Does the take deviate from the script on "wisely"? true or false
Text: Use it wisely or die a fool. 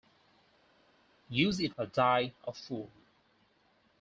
true